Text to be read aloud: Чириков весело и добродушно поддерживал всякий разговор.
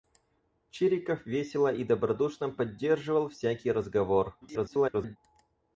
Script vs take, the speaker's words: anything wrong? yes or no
yes